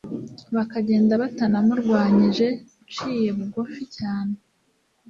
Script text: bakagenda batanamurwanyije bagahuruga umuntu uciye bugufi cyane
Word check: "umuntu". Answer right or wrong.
wrong